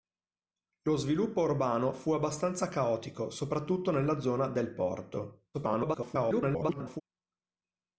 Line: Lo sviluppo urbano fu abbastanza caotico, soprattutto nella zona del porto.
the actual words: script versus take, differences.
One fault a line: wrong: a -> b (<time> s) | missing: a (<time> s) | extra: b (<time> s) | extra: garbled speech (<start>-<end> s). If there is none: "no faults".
extra: garbled speech (5.5-7.0 s)